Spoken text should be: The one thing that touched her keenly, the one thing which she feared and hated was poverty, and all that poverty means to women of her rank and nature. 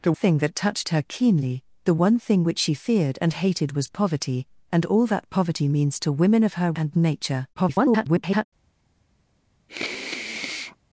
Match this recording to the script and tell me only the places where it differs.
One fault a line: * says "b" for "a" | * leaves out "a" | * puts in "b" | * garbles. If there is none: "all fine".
* leaves out "one"
* leaves out "rank"
* garbles